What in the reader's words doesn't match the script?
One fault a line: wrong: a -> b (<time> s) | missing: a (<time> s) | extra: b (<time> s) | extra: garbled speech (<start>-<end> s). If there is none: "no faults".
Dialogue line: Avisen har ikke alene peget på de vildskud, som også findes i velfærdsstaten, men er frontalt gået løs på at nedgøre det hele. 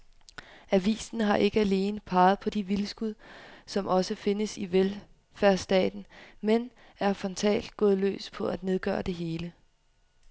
no faults